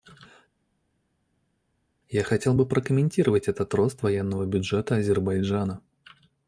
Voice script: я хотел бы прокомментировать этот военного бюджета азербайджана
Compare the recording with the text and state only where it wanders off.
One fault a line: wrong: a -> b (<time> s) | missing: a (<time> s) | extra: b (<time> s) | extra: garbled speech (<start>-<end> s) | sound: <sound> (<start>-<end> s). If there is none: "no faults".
extra: рост (3.7 s)